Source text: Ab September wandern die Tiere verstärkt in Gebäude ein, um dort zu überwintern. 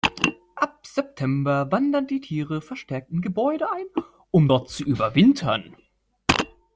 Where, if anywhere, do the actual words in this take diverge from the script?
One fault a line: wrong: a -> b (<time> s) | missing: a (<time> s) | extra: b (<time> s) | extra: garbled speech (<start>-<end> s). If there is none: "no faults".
no faults